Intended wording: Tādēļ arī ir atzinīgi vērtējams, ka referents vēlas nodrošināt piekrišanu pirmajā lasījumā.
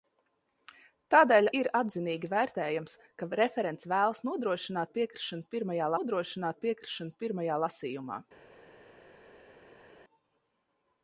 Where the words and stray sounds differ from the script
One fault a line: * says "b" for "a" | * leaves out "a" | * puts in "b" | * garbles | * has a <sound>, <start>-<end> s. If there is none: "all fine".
* leaves out "arī"
* puts in "nodrošināt piekrišanu pirmajā"